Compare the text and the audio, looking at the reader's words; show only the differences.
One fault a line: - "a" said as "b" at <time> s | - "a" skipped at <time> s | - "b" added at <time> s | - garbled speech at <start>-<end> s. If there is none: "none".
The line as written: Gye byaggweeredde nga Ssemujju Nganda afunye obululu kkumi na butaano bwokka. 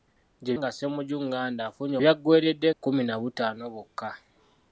- "byaggweeredde" skipped at 0.5 s
- "obululu" said as "byaggweeredde" at 2.0 s